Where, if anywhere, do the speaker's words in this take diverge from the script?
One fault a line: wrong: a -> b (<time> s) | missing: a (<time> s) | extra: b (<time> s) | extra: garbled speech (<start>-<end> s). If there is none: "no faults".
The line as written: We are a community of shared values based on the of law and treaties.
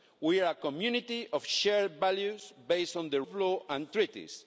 no faults